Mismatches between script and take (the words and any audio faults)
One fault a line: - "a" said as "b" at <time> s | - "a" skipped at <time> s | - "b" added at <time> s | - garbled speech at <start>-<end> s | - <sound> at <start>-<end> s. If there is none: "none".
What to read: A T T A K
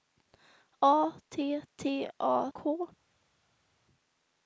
none